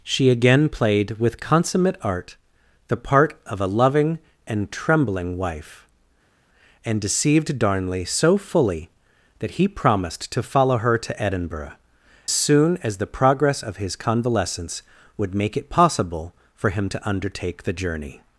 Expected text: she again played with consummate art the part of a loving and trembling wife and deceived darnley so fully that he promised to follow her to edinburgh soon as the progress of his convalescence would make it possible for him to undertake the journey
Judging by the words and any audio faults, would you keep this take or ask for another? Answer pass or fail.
pass